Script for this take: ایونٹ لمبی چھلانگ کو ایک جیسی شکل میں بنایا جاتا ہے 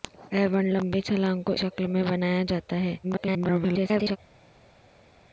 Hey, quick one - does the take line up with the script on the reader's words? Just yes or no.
no